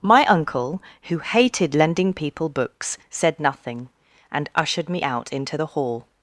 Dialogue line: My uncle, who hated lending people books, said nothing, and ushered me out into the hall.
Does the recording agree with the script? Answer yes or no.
yes